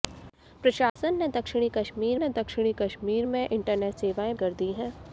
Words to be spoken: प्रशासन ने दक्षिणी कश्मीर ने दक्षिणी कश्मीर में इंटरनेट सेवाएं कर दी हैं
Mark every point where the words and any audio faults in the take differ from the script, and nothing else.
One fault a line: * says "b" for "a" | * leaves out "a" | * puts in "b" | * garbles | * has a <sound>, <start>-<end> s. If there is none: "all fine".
* has a dropout, 0.9-1.0 s